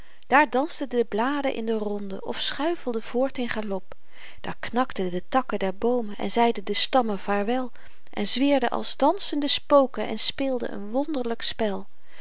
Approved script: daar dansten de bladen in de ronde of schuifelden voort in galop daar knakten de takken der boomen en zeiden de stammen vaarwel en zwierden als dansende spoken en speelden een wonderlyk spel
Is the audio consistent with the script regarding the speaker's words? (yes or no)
yes